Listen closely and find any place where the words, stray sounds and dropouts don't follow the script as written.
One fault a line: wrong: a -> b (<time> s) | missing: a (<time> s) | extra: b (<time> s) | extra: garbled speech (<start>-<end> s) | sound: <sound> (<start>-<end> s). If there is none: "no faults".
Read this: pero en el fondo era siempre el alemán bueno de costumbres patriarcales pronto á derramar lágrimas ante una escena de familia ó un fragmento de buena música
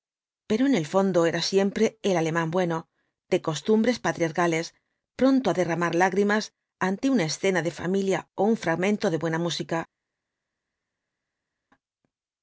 no faults